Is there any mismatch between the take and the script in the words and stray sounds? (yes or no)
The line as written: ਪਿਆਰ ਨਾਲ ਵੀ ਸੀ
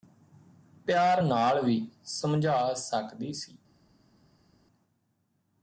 yes